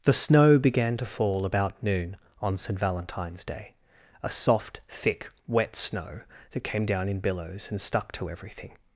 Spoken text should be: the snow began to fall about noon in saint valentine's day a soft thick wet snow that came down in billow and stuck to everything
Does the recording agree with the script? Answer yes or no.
no